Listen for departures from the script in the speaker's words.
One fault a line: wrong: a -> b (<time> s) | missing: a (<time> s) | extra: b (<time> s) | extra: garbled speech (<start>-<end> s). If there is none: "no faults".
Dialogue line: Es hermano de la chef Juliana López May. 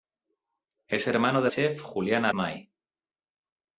missing: la (1.5 s)
missing: López (2.3 s)